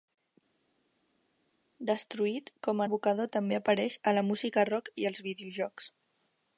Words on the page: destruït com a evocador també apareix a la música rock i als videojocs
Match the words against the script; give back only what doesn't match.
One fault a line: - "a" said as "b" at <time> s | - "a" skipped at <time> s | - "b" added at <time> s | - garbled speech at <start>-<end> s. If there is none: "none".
none